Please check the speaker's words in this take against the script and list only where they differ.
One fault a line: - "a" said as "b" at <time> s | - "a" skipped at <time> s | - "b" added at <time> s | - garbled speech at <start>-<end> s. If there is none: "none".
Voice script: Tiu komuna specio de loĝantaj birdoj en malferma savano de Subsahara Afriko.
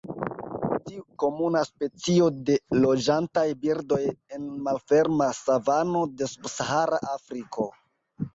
none